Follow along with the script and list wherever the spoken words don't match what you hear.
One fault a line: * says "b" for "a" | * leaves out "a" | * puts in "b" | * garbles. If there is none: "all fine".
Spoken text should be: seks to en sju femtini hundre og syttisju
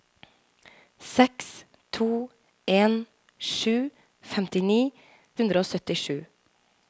all fine